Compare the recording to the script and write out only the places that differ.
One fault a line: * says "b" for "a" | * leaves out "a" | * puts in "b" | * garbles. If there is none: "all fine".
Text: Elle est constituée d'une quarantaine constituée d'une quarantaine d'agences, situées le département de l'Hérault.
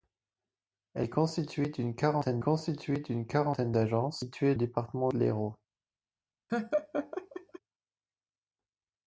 all fine